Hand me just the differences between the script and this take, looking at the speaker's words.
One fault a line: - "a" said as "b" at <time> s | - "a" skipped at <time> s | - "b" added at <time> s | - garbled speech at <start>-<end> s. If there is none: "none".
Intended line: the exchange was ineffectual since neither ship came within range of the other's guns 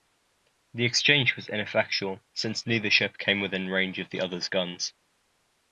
none